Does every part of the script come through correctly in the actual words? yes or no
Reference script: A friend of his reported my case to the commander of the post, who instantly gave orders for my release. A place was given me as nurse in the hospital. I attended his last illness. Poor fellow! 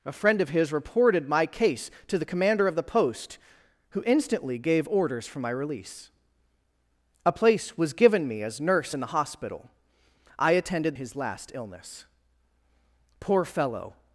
yes